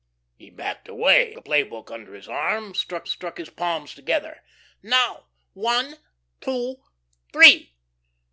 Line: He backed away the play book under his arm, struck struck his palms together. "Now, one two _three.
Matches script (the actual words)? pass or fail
pass